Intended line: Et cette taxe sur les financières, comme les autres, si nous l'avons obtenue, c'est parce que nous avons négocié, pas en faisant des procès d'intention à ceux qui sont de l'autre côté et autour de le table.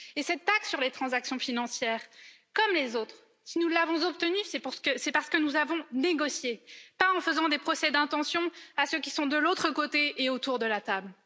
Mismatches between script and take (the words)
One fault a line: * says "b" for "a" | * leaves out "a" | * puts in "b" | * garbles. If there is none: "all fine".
* puts in "transactions"
* says "la" for "le"